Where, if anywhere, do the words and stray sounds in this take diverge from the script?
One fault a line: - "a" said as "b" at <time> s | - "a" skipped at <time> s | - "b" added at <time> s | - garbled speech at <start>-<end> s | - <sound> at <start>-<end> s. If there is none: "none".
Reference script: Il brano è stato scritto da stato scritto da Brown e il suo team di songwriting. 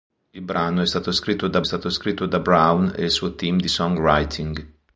none